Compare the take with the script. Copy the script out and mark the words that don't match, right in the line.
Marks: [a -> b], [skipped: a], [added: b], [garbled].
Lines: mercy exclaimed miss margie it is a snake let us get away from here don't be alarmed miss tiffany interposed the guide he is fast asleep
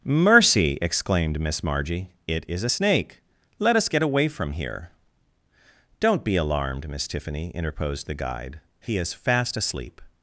mercy exclaimed miss margie it is a snake let us get away from here don't be alarmed miss tiffany interposed the guide he is fast asleep